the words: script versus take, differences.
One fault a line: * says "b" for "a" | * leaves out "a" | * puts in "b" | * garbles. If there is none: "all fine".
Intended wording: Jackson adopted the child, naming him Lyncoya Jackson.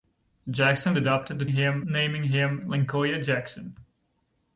* says "him" for "child"